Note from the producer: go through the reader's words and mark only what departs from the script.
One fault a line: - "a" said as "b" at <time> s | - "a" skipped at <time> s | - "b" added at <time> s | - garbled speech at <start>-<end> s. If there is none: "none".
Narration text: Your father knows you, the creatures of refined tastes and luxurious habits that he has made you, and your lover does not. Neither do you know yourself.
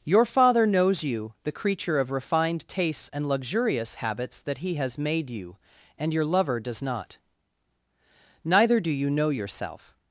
- "creatures" said as "creature" at 1.5 s